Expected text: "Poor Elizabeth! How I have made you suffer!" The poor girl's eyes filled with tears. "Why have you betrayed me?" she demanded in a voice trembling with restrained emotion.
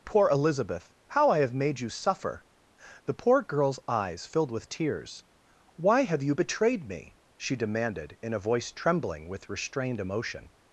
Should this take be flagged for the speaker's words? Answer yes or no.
no